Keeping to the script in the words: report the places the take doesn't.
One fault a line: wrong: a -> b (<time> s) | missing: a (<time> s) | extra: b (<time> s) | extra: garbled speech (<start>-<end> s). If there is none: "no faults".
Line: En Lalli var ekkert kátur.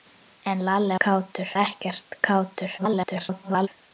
wrong: var -> kátur (1.0 s)
extra: garbled speech (2.8-3.7 s)